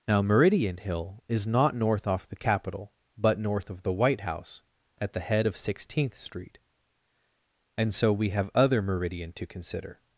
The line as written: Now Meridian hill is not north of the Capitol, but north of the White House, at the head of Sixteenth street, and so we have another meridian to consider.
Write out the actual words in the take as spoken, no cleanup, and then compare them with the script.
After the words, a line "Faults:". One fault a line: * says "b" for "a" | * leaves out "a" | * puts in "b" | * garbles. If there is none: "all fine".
Now Meridian hill is not north off the Capitol, but north of the White House, at the head of Sixteenth street, and so we have other meridian to consider.
Faults:
* says "off" for "of"
* says "other" for "another"